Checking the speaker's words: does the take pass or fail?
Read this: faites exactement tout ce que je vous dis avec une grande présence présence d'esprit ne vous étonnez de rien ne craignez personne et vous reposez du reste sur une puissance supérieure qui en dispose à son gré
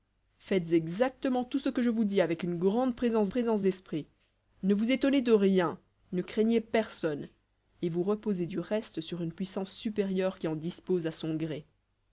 pass